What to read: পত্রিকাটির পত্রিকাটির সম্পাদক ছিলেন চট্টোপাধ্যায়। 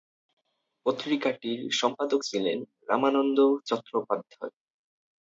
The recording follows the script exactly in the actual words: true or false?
false